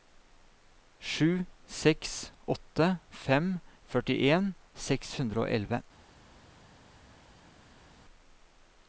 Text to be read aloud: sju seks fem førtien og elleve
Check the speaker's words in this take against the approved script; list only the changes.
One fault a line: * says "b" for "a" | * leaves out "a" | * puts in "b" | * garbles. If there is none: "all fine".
* puts in "åtte"
* puts in "seks hundre"